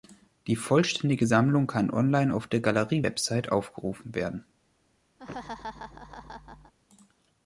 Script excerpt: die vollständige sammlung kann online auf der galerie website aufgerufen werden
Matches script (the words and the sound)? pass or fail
fail